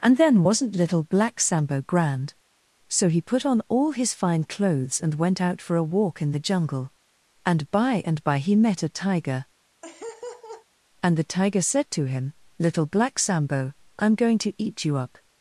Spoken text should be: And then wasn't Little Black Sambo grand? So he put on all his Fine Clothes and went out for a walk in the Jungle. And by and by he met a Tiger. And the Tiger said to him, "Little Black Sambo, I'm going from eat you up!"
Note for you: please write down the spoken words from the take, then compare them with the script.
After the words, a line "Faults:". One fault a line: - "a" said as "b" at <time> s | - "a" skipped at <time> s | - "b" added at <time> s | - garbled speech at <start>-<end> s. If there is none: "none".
And then wasn't Little Black Sambo grand? So he put on all his Fine Clothes and went out for a walk in the Jungle. And by and by he met a Tiger. And the Tiger said to him, "Little Black Sambo, I'm going to eat you up!"
Faults:
- "from" said as "to" at 14.4 s